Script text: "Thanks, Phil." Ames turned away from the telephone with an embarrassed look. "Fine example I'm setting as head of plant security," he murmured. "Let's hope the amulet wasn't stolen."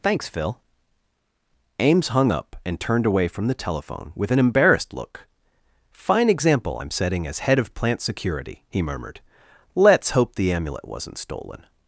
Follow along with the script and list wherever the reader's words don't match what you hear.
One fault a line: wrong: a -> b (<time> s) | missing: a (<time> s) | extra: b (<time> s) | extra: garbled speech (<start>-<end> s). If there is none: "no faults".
extra: hung up and (2.1 s)